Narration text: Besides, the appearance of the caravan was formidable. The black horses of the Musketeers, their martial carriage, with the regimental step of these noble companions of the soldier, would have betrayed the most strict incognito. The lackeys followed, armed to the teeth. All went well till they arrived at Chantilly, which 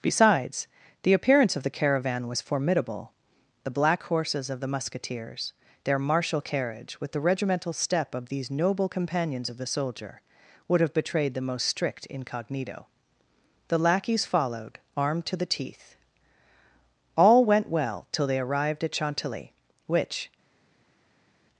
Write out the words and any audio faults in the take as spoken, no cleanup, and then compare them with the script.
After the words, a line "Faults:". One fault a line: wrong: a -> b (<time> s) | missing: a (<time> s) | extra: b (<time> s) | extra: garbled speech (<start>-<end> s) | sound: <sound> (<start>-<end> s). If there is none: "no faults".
Besides, the appearance of the caravan was formidable. The black horses of the Musketeers, their martial carriage, with the regimental step of these noble companions of the soldier, would have betrayed the most strict incognito. The lackeys followed, armed to the teeth. All went well till they arrived at Chantilly, which
Faults:
no faults